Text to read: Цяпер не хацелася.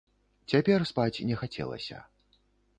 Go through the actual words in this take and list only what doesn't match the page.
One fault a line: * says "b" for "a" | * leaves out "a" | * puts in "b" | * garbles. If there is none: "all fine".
* puts in "спаць"